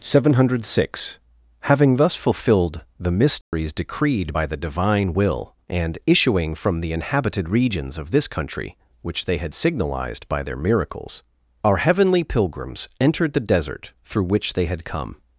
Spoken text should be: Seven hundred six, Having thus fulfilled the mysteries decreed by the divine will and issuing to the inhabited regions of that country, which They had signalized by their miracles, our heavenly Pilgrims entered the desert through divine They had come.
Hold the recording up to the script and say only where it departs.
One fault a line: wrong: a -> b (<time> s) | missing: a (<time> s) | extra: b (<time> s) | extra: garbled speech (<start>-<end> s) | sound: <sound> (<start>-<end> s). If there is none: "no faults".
sound: dropout (3.4-3.5 s)
wrong: to -> from (6.5 s)
wrong: that -> this (8.1 s)
wrong: divine -> which (14.2 s)